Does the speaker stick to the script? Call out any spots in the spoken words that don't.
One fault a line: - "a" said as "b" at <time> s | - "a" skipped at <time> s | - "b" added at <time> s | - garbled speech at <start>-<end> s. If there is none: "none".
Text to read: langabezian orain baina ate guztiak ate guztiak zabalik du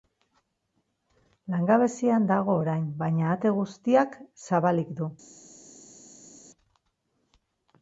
- "dago" added at 2.3 s
- "ate guztiak" skipped at 4.2 s